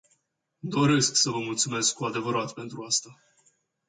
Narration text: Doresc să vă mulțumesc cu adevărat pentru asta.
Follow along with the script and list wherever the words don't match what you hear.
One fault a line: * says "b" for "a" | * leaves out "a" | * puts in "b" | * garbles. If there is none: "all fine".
all fine